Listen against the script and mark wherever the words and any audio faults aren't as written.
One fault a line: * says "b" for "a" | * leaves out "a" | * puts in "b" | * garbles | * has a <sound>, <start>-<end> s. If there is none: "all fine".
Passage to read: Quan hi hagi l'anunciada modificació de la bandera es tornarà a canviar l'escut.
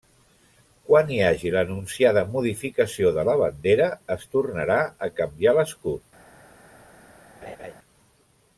* has a laugh, 7.4-7.7 s